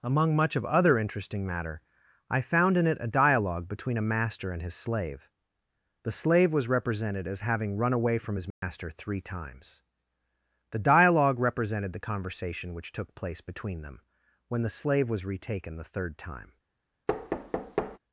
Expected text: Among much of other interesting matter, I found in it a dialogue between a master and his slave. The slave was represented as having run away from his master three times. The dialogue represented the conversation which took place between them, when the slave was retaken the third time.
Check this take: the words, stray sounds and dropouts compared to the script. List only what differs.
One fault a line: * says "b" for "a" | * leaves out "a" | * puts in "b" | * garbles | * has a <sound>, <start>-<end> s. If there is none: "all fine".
* has a dropout, 8.5-8.6 s
* has a thud, 17.1-18.0 s